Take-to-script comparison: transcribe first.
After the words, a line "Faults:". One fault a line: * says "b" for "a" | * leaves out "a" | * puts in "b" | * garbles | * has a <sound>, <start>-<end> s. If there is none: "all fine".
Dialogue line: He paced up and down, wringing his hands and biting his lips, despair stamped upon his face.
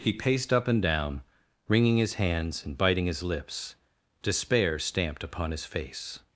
He paced up and down, wringing his hands and biting his lips, despair stamped upon his face.
Faults:
all fine